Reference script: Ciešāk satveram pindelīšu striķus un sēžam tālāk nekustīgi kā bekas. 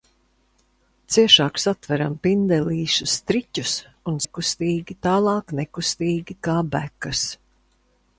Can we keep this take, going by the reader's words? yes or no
no